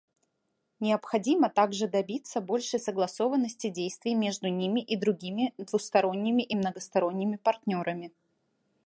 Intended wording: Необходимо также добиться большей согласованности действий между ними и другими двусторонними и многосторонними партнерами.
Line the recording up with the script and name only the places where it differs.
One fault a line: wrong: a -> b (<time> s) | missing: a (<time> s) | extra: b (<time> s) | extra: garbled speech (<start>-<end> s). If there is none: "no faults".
no faults